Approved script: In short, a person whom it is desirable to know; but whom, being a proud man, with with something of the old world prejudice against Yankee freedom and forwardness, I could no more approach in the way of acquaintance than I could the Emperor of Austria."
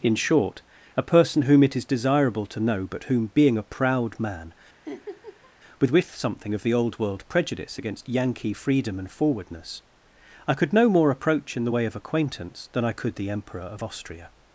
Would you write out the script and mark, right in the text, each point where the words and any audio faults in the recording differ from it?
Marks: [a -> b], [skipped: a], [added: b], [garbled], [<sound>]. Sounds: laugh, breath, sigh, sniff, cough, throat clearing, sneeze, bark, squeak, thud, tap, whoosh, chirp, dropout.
In short, a person whom it is desirable to know; but whom, being a proud man, [laugh] with with something of the old world prejudice against Yankee freedom and forwardness, I could no more approach in the way of acquaintance than I could the Emperor of Austria."